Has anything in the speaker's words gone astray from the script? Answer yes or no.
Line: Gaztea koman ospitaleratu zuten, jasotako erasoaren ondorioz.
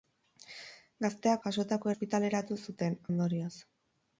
yes